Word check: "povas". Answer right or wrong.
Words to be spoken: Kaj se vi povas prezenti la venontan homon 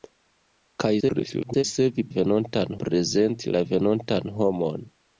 wrong